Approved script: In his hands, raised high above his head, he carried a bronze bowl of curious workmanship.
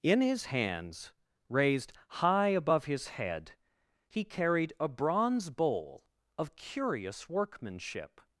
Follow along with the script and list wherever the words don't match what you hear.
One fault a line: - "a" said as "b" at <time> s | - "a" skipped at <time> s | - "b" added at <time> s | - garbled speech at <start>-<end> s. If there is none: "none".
none